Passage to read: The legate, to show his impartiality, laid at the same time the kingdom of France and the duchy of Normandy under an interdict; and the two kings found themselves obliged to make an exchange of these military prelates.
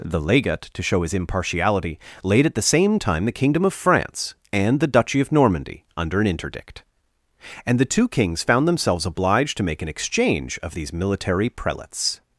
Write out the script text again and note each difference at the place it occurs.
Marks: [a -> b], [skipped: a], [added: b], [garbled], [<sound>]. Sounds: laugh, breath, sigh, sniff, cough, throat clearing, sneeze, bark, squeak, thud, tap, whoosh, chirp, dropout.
The legate, to show his impartiality, laid at the same time the kingdom of France and the duchy of Normandy under an interdict; and the two kings found themselves obliged to make an exchange of these military prelates.